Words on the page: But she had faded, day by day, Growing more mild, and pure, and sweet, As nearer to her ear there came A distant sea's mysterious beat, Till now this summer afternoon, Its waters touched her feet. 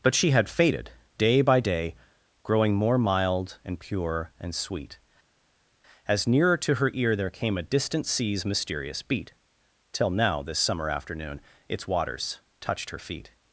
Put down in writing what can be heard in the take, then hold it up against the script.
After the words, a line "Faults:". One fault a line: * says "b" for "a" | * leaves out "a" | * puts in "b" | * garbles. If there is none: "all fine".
But she had faded, day by day, Growing more mild, and pure, and sweet, As nearer to her ear there came A distant sea's mysterious beat, Till now this summer afternoon, Its waters touched her feet.
Faults:
all fine